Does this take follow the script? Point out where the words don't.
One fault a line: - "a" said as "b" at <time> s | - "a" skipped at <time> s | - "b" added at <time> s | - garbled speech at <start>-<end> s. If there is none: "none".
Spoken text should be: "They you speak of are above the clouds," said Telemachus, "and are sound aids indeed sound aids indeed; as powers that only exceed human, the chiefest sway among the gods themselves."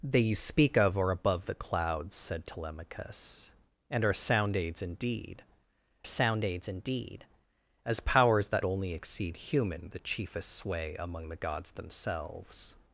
none